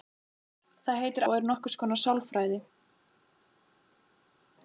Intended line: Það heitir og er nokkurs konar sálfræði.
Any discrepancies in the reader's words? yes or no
no